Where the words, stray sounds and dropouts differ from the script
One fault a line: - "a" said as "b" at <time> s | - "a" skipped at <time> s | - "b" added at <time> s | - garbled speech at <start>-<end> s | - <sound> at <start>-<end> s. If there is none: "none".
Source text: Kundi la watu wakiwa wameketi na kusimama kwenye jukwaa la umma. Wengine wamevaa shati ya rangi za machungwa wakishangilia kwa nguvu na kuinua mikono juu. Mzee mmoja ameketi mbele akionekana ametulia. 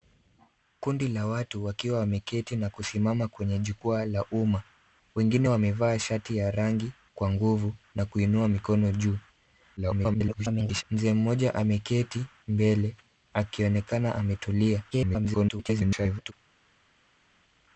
- "za machungwa wakishangilia" skipped at 6.9 s
- garbled speech at 9.8-10.8 s
- garbled speech at 14.9-16.3 s